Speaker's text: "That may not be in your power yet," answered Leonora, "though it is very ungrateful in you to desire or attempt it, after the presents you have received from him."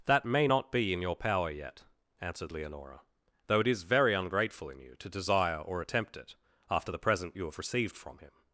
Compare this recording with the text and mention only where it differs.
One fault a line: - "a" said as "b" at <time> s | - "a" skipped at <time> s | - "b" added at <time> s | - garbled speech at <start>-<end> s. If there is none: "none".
- "presents" said as "present" at 7.0 s